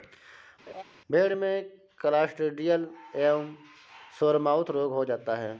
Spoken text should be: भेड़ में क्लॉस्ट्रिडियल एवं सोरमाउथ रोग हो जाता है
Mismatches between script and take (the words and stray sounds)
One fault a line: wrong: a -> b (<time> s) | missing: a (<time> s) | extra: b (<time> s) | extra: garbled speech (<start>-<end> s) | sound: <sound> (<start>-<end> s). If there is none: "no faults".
sound: laugh (0.7-0.8 s)